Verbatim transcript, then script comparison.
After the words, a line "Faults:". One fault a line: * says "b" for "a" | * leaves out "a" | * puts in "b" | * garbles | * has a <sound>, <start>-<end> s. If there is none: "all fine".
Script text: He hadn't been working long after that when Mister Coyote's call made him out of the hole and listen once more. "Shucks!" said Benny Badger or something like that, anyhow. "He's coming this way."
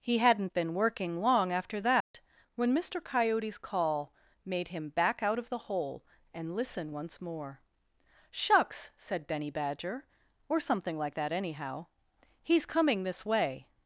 He hadn't been working long after that when Mister Coyote's call made him back out of the hole and listen once more. "Shucks!" said Benny Badger or something like that, anyhow. "He's coming this way."
Faults:
* has a dropout, 2.0-2.1 s
* puts in "back"